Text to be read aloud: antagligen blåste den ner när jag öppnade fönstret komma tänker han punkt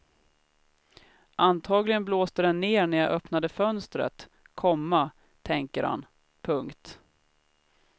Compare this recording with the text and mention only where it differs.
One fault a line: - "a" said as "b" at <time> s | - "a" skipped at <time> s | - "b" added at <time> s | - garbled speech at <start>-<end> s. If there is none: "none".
none